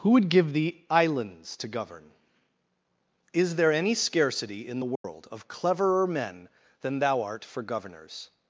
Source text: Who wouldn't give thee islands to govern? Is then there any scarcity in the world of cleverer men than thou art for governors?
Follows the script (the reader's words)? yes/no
no